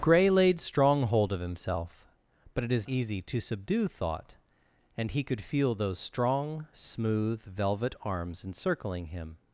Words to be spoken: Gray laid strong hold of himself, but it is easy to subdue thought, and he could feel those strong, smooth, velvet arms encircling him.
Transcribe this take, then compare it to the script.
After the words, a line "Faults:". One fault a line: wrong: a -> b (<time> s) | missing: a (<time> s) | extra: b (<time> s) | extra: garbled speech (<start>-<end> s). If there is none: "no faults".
Gray laid strong hold of himself, but it is easy to subdue thought, and he could feel those strong, smooth, velvet arms encircling him.
Faults:
no faults